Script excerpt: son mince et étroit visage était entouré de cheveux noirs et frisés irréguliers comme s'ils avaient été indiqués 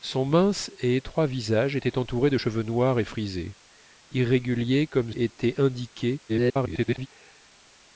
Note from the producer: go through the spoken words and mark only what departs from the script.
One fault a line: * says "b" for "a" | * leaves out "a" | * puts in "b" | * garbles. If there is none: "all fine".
* leaves out "s'ils avaient"
* garbles